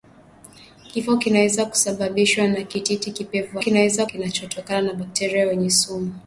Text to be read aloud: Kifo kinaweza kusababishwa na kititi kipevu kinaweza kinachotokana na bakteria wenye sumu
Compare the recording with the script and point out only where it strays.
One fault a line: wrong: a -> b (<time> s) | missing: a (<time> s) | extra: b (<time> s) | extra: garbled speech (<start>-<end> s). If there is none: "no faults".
no faults